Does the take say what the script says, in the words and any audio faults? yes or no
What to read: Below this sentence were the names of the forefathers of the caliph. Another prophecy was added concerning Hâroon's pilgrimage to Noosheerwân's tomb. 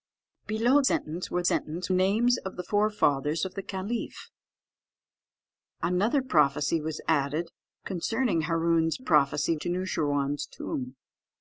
no